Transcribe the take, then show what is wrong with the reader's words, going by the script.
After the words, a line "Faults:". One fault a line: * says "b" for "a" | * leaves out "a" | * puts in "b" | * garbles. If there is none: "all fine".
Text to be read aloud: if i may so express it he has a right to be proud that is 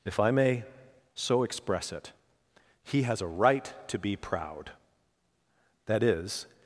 if i may so express it he has a right to be proud that is
Faults:
all fine